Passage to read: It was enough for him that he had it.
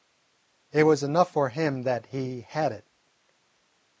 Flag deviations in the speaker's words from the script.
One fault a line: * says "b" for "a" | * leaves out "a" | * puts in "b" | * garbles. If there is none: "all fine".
all fine